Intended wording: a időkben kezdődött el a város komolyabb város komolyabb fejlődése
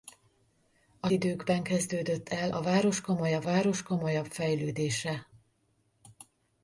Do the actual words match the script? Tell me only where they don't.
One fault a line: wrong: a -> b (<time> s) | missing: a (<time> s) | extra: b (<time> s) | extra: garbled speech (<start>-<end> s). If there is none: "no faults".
no faults